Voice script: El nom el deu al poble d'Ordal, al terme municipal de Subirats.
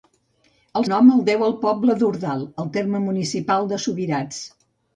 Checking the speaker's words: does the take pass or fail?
pass